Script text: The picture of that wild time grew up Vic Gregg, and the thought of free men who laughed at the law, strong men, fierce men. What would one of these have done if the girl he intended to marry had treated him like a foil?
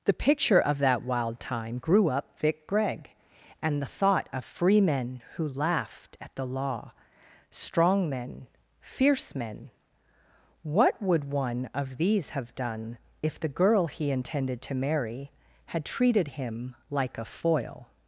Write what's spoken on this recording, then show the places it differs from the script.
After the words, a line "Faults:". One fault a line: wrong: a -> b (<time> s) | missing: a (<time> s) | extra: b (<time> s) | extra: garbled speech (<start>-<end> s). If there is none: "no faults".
The picture of that wild time grew up Vic Gregg, and the thought of free men who laughed at the law, strong men, fierce men. What would one of these have done if the girl he intended to marry had treated him like a foil?
Faults:
no faults